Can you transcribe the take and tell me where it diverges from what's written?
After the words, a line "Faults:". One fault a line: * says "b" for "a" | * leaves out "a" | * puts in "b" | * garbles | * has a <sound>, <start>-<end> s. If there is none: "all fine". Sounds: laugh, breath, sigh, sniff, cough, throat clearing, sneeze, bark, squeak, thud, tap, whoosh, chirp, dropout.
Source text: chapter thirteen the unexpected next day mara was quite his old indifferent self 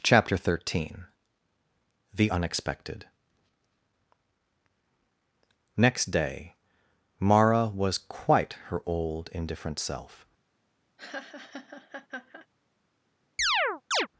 chapter thirteen the unexpected next day mara was quite her old indifferent self
Faults:
* says "her" for "his"
* has a laugh, 11.0-12.5 s
* has a chirp, 13.4-14.1 s